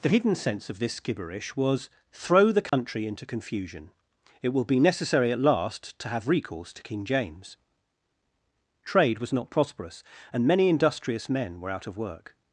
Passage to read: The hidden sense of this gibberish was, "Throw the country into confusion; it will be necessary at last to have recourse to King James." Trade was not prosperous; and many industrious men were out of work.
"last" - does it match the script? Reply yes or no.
yes